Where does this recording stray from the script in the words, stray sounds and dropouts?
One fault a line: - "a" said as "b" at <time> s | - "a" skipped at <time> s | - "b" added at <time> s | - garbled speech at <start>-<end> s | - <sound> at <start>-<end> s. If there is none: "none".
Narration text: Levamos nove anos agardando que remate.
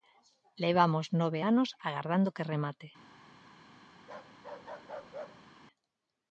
- bark at 4.0-5.5 s